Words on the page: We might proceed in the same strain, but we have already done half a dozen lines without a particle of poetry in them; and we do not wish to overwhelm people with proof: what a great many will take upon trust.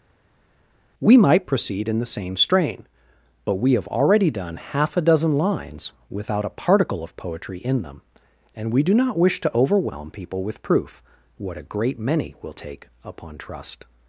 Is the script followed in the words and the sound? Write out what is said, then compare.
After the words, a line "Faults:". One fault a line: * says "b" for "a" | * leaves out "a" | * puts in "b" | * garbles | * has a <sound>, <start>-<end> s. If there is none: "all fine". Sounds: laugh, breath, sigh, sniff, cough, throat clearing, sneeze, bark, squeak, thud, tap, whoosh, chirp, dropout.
We might proceed in the same strain, but we have already done half a dozen lines without a particle of poetry in them; and we do not wish to overwhelm people with proof: what a great many will take upon trust.
Faults:
all fine